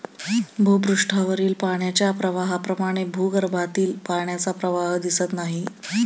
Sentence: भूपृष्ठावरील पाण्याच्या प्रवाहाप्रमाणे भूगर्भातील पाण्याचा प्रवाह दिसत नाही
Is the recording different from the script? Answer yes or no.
no